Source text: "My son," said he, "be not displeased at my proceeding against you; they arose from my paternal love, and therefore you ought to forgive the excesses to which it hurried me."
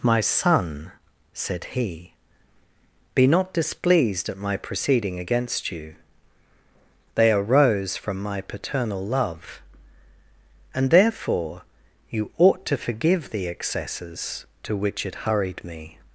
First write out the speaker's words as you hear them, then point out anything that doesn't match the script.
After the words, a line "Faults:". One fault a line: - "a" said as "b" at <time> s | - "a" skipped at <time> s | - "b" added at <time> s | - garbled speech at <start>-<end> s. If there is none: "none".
"My son," said he, "be not displeased at my proceeding against you; they arose from my paternal love, and therefore you ought to forgive the excesses to which it hurried me."
Faults:
none